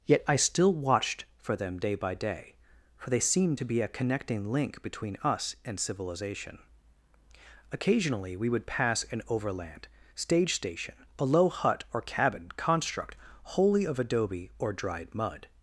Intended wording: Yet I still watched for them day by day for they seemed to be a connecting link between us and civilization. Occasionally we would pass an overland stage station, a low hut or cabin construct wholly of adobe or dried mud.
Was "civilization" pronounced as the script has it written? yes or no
yes